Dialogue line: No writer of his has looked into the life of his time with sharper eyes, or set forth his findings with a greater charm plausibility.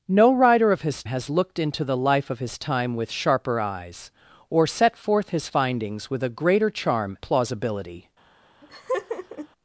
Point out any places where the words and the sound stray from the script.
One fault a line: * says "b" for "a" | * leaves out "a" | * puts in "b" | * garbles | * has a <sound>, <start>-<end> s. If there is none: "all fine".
* has a laugh, 8.6-9.5 s